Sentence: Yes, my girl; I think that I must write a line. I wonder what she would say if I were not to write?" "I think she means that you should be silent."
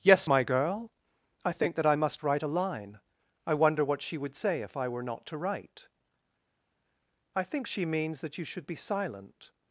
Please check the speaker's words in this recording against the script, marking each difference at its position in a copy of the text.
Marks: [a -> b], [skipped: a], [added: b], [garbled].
Yes, my girl; I think that I must write a line. I wonder what she would say if I were not to write?" "I think she means that you should be silent."